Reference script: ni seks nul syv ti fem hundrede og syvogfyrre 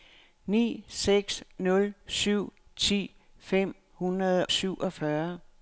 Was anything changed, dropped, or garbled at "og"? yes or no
yes